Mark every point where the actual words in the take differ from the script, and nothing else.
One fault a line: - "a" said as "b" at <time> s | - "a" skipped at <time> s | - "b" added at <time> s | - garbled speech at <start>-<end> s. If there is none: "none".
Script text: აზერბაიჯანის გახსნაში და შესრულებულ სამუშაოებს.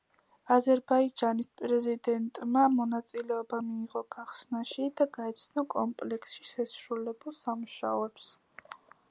- "პრეზიდენტმა მონაწილეობა მიიღო" added at 1.6 s
- "გაეცნო კომპლექსში" added at 5.2 s